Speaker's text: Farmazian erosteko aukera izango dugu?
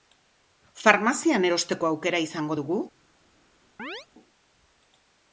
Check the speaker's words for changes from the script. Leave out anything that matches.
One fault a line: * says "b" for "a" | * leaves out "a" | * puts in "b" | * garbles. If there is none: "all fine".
all fine